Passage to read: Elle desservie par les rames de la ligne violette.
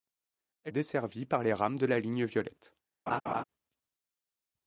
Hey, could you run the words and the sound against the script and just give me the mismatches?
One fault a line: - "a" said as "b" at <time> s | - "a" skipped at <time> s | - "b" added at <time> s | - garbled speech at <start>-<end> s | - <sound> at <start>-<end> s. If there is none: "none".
- laugh at 3.1-3.4 s